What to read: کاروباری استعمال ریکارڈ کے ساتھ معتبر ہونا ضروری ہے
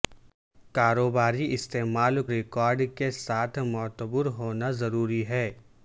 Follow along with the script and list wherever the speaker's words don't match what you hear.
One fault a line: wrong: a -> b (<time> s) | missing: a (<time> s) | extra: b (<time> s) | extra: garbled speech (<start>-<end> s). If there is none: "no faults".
no faults